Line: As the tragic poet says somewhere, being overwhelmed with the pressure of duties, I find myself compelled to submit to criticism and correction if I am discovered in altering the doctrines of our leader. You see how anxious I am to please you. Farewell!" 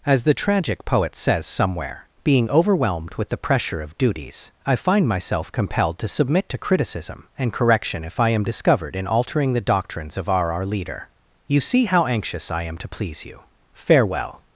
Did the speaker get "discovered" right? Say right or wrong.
right